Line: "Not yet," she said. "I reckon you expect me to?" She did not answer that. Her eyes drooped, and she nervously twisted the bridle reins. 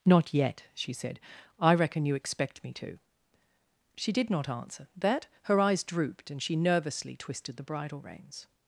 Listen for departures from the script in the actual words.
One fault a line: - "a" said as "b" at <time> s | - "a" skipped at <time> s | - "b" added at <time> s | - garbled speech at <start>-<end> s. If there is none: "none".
none